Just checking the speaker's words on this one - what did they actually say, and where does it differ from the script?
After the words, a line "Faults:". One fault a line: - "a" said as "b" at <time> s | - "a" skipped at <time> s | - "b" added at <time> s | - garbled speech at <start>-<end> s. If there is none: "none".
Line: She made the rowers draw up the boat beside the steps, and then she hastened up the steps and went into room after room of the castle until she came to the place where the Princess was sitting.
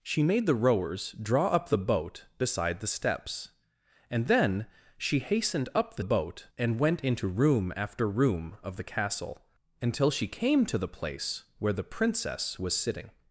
She made the rowers draw up the boat beside the steps, and then she hastened up the boat and went into room after room of the castle until she came to the place where the Princess was sitting.
Faults:
- "steps" said as "boat" at 6.0 s